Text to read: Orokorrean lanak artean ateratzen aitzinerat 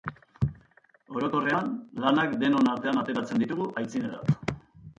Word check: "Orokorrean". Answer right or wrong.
right